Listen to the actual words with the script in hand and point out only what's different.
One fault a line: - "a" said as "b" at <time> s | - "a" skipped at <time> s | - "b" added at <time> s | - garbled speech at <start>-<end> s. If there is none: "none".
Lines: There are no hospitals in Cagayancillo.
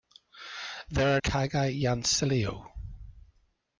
- "no hospitals in" skipped at 1.2 s